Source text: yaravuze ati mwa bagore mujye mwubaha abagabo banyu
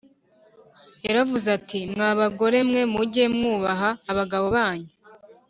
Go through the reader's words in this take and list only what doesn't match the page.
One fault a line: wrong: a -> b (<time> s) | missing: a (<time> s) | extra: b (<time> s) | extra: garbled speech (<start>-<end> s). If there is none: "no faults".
extra: mwe (2.7 s)